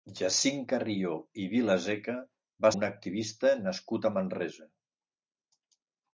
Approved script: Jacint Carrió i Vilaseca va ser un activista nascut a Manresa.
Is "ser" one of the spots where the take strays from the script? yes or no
yes